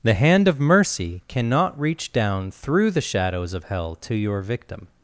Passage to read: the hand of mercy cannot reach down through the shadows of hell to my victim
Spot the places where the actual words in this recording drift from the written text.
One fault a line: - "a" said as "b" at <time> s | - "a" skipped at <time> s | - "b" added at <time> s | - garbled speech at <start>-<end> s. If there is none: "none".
- "my" said as "your" at 4.1 s